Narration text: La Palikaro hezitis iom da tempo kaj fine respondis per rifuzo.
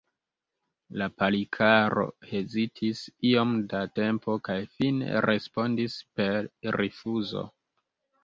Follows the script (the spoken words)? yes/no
yes